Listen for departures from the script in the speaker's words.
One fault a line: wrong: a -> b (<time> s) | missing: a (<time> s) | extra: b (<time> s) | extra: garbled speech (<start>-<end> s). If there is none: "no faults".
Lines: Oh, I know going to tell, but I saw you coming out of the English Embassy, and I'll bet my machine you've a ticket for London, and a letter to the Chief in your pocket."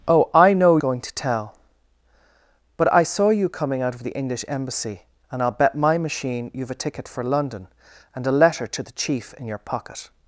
no faults